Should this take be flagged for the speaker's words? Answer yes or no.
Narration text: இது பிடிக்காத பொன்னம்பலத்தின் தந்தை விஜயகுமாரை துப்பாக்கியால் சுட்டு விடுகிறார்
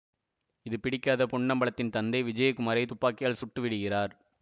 no